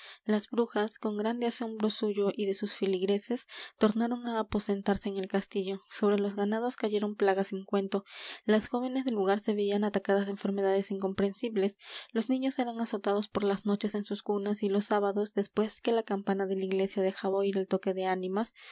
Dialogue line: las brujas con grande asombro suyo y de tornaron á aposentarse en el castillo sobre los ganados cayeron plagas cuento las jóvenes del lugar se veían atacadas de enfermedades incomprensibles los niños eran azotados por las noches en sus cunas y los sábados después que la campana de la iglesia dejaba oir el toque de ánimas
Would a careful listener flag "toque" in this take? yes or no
no